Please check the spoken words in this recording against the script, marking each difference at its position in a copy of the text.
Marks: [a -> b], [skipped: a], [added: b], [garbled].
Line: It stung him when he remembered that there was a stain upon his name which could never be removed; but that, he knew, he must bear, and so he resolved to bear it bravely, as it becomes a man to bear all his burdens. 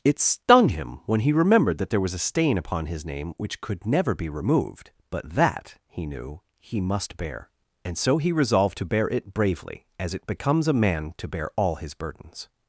It stung him when he remembered that there was a stain upon his name which could never be removed; but that, he knew, he must bear, and so he resolved to bear it bravely, as it becomes a man to bear all his burdens.